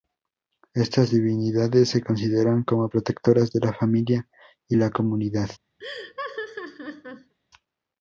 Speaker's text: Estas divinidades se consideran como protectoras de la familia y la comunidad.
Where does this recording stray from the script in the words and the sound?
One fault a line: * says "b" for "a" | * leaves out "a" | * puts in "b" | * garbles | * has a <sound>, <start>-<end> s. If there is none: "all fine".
* has a laugh, 5.8-7.3 s